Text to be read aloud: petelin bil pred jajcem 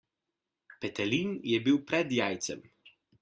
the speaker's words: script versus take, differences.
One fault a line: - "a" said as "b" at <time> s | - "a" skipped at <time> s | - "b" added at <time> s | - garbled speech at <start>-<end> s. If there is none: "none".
- "je" added at 1.4 s